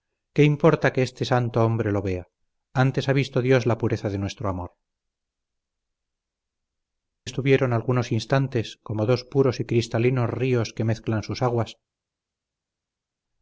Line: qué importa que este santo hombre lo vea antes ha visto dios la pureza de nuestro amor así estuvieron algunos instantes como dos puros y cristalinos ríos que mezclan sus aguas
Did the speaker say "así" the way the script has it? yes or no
no